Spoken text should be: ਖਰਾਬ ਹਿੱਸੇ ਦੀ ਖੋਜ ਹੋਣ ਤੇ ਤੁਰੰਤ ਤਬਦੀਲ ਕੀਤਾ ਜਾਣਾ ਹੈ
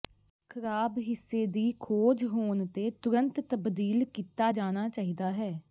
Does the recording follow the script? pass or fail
fail